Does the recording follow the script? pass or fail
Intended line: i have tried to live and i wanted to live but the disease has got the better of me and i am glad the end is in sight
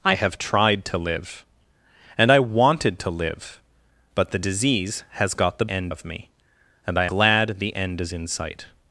fail